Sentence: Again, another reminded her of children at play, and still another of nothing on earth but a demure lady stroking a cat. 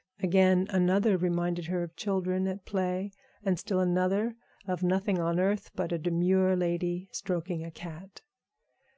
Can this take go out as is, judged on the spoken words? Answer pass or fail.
pass